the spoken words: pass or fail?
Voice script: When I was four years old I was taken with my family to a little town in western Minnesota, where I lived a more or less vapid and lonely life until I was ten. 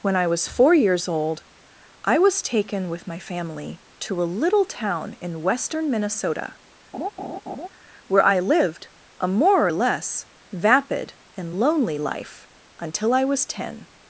pass